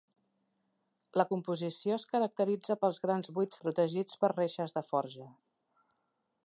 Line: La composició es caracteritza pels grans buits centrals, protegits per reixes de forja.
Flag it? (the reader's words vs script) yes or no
yes